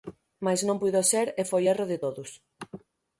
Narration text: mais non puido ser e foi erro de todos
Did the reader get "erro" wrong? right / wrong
right